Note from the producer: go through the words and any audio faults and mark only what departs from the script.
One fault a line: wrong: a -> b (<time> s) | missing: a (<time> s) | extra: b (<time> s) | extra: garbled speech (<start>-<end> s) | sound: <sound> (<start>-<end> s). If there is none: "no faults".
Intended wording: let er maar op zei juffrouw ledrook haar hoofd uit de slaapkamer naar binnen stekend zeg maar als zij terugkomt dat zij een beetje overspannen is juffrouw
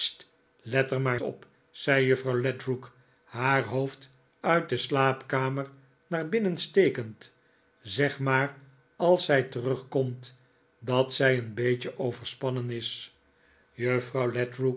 no faults